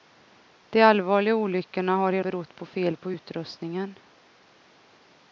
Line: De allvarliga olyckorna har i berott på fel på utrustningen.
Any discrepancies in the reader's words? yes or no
no